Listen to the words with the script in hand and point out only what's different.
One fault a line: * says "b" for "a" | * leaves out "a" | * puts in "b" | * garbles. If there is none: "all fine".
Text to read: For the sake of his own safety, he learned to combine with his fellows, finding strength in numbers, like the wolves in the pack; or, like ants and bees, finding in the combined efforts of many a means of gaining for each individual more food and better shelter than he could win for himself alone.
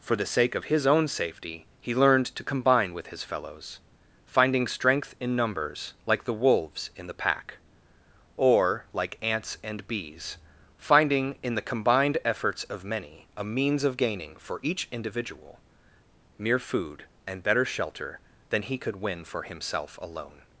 * says "mere" for "more"